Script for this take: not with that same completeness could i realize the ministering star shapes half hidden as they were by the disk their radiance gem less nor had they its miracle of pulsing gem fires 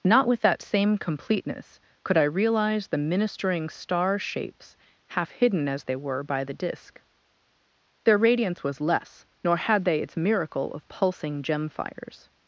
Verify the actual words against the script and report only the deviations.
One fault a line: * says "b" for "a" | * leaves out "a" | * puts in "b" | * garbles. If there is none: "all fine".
* says "was" for "gem"